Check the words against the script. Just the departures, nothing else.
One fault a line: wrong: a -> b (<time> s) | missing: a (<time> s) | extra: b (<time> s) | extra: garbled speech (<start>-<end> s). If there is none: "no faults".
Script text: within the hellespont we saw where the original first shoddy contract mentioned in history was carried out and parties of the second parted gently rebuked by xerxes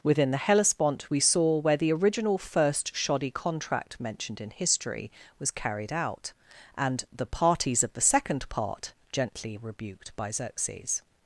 extra: the (7.2 s)
wrong: parted -> part (8.5 s)